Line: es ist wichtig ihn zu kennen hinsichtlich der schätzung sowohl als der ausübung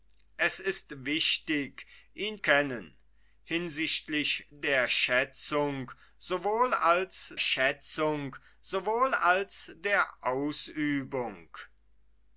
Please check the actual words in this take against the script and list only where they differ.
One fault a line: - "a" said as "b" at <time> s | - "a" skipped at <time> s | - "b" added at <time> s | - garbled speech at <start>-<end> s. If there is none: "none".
- "zu" skipped at 2.4 s
- "schätzung sowohl als" added at 7.4 s